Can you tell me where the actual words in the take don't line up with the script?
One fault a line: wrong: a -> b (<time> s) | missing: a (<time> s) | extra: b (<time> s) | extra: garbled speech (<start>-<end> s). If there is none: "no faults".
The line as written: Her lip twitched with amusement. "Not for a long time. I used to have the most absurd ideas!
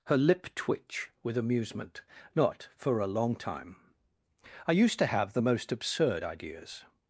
wrong: twitched -> twitch (0.6 s)